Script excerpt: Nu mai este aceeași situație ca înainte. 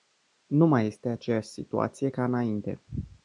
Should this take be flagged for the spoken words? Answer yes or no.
no